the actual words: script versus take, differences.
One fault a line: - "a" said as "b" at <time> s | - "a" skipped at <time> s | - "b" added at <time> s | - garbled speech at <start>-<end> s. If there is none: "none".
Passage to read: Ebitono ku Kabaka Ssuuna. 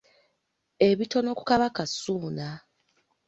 none